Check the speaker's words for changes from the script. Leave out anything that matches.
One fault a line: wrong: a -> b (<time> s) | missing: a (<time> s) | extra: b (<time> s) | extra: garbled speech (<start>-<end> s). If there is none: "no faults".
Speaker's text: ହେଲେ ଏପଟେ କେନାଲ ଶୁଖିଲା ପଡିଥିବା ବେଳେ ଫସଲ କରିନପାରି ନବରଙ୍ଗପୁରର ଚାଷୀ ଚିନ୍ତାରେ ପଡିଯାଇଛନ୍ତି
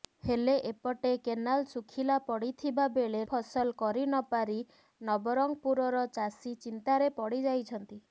no faults